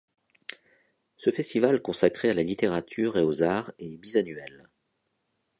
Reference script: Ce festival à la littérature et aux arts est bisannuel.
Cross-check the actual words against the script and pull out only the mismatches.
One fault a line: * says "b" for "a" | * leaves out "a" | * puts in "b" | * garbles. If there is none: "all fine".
* puts in "consacré"